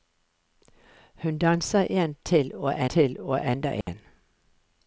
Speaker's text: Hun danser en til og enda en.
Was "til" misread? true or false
false